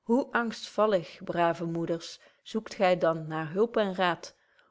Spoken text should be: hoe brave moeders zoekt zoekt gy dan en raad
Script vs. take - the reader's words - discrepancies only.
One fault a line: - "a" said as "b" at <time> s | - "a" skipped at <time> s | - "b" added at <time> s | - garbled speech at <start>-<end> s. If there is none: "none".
- "angstvallig" added at 0.3 s
- "zoekt" skipped at 2.7 s
- "naar hulp" added at 3.3 s